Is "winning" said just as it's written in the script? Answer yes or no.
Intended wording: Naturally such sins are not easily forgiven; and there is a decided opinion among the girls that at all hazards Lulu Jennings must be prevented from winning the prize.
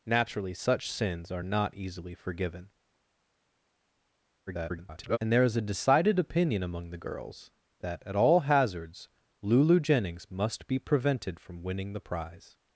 yes